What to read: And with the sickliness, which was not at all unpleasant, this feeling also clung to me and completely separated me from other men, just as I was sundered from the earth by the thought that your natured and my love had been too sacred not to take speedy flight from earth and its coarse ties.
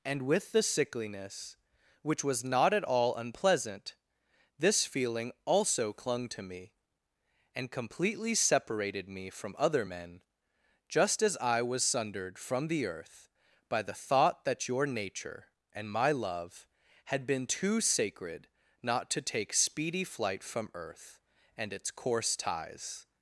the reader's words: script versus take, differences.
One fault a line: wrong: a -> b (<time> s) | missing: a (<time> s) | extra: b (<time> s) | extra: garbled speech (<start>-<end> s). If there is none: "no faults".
wrong: natured -> nature (14.9 s)